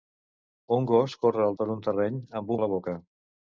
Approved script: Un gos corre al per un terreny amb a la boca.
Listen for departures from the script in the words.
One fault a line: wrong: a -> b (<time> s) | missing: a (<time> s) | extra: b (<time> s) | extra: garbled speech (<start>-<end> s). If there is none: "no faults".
no faults